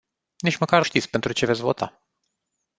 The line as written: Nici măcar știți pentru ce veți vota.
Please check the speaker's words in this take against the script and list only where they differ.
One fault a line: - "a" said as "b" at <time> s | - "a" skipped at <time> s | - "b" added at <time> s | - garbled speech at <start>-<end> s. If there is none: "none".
none